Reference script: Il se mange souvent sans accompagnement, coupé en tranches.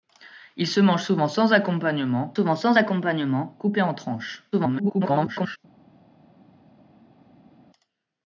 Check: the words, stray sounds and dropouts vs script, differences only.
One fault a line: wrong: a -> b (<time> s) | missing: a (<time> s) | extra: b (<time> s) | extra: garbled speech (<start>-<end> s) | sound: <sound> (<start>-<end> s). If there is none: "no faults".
extra: souvent sans accompagnement (2.3 s)
extra: garbled speech (4.5-5.6 s)